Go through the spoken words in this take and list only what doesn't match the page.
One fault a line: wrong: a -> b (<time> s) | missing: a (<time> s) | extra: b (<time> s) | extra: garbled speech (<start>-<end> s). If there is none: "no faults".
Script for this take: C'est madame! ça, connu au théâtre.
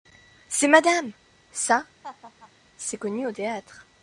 extra: c'est (2.8 s)